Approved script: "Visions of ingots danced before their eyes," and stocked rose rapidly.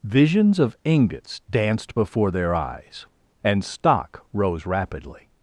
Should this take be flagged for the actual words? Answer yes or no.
yes